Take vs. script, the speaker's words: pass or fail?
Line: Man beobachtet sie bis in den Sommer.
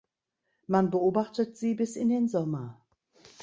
pass